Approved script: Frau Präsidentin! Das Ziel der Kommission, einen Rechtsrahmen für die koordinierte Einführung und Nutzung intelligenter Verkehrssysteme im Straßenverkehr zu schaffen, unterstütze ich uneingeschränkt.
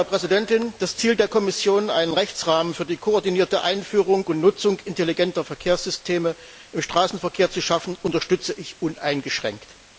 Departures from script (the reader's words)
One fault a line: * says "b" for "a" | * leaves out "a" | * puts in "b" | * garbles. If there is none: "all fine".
all fine